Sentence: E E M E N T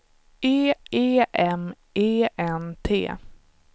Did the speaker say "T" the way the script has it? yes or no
yes